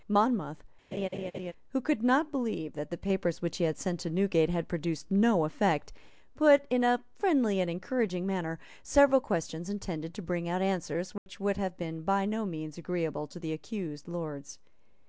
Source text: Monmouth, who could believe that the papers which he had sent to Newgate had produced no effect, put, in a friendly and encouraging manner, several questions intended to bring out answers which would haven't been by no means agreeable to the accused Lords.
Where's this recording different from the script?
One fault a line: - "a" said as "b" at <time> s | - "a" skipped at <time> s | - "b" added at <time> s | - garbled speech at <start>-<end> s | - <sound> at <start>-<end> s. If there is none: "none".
- laugh at 0.9-1.5 s
- "not" added at 2.0 s
- dropout at 11.2-11.3 s
- "haven't" said as "have" at 11.6 s